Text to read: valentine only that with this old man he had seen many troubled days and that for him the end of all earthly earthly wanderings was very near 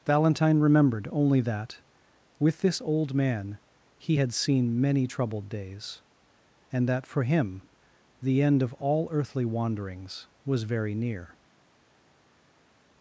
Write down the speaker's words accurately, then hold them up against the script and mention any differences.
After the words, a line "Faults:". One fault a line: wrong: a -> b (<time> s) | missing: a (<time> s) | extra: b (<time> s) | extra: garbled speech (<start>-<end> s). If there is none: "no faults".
valentine remembered only that with this old man he had seen many troubled days and that for him the end of all earthly wanderings was very near
Faults:
extra: remembered (0.6 s)
missing: earthly (9.4 s)